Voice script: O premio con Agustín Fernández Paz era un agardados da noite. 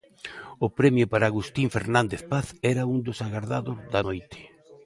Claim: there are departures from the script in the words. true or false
true